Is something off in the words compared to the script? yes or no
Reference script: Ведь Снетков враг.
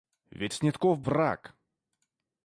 no